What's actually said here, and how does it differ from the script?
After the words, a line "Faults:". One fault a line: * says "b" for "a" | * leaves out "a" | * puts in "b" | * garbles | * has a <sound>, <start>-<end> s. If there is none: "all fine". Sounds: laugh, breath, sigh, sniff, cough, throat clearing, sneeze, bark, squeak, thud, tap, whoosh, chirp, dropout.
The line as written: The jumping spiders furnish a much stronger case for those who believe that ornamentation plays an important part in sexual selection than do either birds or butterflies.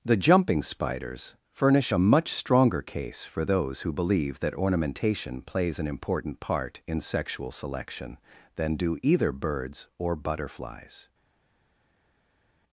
The jumping spiders furnish a much stronger case for those who believe that ornamentation plays an important part in sexual selection than do either birds or butterflies.
Faults:
all fine